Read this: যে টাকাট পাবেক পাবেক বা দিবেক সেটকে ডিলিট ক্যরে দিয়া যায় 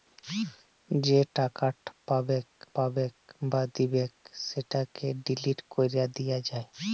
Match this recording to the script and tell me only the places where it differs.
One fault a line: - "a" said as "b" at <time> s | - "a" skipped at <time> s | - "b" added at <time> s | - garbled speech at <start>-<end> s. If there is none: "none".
none